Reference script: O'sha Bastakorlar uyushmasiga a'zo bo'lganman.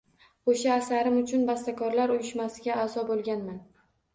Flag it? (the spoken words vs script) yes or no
yes